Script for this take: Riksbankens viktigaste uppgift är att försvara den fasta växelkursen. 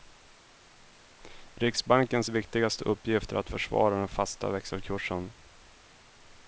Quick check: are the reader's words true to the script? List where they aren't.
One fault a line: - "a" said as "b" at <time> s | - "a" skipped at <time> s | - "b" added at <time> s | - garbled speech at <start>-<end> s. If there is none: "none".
none